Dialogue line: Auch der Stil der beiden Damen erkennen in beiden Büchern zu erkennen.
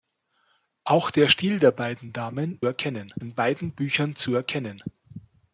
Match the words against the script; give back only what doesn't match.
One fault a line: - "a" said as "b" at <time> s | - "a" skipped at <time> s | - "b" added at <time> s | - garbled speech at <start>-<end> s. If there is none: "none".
none